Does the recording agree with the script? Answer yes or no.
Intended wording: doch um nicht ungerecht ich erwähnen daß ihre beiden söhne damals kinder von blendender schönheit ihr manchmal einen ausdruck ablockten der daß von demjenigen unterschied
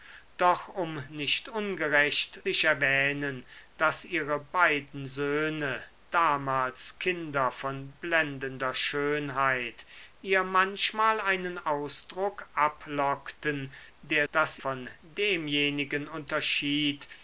yes